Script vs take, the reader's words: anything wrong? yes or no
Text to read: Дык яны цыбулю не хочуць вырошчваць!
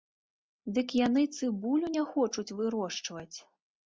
no